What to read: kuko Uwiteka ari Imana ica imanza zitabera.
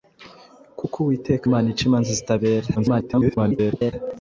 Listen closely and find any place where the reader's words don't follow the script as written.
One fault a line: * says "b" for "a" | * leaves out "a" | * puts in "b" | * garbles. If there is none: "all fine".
* leaves out "ari"
* garbles